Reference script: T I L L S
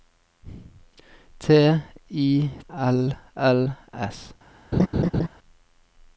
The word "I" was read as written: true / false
true